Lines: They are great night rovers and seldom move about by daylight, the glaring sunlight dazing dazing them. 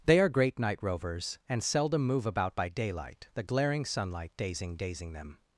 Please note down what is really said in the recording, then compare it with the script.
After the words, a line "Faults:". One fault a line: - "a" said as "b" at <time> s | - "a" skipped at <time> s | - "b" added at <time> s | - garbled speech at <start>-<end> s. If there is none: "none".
They are great night rovers and seldom move about by daylight, the glaring sunlight dazing dazing them.
Faults:
none